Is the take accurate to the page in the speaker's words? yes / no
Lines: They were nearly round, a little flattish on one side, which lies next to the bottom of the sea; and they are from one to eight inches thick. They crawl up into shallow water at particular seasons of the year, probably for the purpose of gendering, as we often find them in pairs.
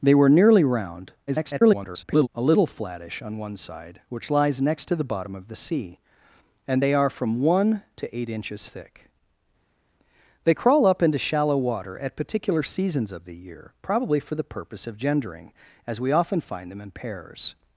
no